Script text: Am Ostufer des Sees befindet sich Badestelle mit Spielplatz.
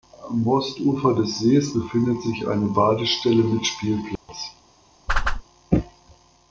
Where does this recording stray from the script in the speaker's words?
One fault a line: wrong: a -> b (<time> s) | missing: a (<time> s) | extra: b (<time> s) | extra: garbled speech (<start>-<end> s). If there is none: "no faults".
extra: eine (2.5 s)